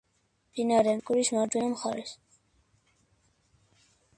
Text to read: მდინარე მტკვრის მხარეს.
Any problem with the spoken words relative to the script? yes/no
yes